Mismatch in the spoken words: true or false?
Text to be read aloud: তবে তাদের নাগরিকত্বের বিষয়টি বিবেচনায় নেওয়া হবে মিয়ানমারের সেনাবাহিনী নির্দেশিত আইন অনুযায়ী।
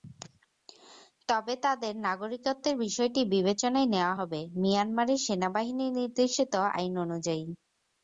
false